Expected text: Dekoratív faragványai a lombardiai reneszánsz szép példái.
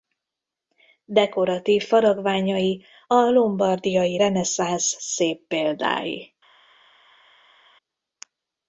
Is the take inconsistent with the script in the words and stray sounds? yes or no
no